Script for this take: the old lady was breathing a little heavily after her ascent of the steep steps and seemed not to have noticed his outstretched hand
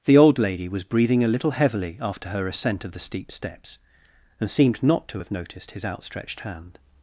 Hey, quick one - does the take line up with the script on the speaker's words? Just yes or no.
yes